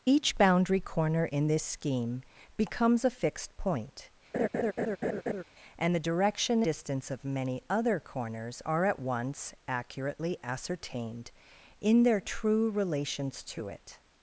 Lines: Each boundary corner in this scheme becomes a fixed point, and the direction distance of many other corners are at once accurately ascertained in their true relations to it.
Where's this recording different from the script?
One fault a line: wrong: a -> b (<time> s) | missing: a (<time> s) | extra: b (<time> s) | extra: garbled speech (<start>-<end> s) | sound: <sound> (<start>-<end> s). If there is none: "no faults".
sound: laugh (4.3-5.4 s)